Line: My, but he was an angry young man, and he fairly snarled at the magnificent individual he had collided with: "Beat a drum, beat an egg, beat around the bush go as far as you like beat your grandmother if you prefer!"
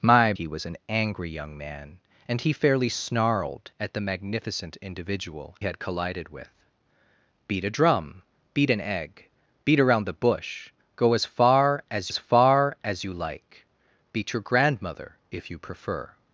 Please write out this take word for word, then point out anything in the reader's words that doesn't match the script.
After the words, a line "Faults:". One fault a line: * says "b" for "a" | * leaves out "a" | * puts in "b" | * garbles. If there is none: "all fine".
My, he was an angry young man, and he fairly snarled at the magnificent individual had collided with: "Beat a drum, beat an egg, beat around the bush go as far as as far as you like beat your grandmother if you prefer!"
Faults:
* leaves out "but"
* leaves out "he"
* puts in "as far as"